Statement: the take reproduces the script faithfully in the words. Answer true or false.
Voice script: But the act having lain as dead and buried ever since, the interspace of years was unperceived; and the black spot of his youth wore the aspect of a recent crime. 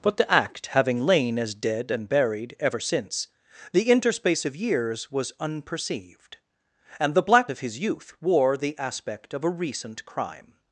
false